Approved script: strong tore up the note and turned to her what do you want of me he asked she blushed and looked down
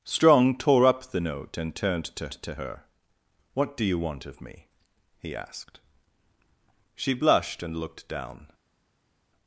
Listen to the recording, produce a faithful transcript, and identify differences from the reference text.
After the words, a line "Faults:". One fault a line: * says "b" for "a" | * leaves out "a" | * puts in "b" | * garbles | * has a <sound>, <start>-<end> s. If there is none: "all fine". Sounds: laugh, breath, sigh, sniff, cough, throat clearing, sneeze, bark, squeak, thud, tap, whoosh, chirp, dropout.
strong tore up the note and turned to to her what do you want of me he asked she blushed and looked down
Faults:
* puts in "to"